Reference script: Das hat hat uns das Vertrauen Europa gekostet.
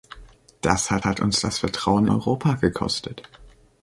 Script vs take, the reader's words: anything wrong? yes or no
no